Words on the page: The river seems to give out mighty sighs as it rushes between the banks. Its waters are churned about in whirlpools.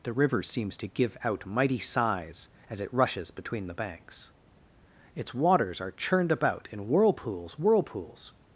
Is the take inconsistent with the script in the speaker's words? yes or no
yes